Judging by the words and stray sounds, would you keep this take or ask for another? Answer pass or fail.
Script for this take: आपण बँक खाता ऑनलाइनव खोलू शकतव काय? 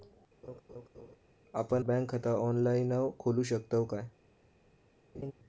fail